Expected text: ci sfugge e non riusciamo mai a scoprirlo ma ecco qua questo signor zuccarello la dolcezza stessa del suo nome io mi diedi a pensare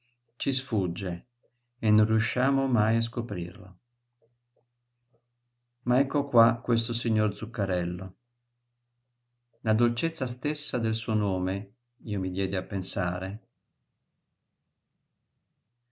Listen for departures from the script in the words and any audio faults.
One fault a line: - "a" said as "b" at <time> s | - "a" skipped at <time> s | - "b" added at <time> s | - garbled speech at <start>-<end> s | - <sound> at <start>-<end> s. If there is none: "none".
none